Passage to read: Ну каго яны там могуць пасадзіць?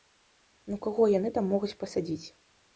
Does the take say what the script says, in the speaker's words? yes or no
yes